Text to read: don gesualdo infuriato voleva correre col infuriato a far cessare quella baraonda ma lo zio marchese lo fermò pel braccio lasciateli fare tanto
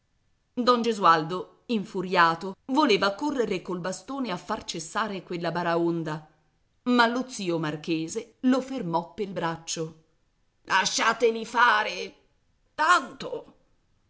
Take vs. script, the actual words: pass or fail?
fail